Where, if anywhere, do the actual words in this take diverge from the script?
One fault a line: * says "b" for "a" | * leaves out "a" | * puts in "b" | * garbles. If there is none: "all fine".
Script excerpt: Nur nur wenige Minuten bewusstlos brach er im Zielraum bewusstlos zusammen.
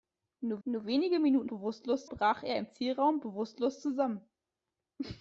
all fine